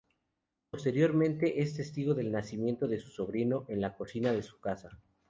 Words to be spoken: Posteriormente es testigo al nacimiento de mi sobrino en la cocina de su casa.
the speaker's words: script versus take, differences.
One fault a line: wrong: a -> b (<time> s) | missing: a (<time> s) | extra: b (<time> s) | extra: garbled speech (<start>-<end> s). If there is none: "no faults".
wrong: al -> del (2.1 s)
wrong: mi -> su (3.0 s)